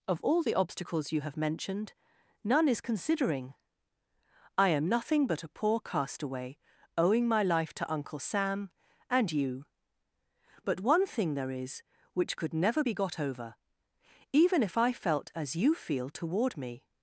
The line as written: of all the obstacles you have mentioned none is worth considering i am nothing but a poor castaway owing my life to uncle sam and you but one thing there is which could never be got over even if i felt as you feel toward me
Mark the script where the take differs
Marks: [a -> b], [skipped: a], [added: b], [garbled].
of all the obstacles you have mentioned none is [skipped: worth] considering i am nothing but a poor castaway owing my life to uncle sam and you but one thing there is which could never be got over even if i felt as you feel toward me